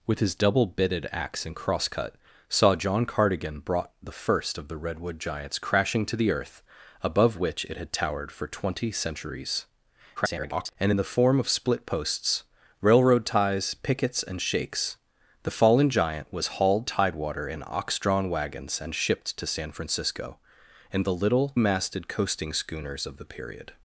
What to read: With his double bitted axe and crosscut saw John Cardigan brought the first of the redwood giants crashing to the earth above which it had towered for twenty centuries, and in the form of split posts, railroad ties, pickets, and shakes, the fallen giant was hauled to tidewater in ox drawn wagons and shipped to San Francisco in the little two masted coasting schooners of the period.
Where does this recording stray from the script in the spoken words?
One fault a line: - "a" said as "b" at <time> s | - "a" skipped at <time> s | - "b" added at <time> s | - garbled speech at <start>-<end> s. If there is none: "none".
- garbled speech at 10.2-10.8 s
- "to" skipped at 16.9 s
- "two" skipped at 21.5 s